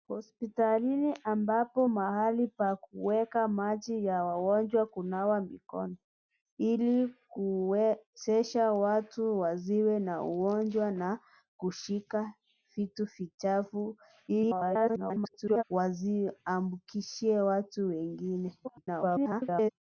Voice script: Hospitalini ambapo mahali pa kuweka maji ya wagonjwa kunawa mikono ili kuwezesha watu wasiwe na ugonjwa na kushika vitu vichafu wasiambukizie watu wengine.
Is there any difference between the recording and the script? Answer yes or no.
yes